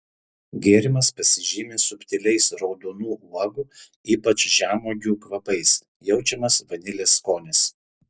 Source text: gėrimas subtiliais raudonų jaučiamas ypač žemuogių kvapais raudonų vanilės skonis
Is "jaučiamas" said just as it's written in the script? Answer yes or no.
no